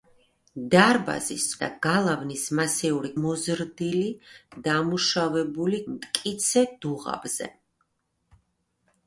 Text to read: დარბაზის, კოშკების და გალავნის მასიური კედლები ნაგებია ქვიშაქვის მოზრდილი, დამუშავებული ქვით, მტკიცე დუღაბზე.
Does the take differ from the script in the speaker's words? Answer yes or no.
yes